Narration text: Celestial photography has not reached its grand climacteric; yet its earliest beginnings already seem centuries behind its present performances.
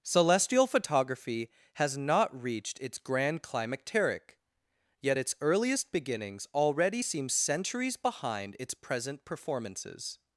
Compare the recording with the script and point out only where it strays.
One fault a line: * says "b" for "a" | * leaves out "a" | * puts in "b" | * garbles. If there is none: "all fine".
all fine